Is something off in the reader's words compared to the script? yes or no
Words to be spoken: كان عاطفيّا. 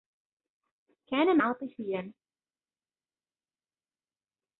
no